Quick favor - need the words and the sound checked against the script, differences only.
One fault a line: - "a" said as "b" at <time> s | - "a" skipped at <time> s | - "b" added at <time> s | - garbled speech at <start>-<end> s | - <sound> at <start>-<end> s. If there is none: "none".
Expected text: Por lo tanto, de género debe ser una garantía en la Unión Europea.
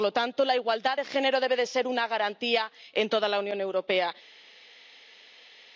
- "la igualdad" added at 0.5 s
- "toda" added at 3.1 s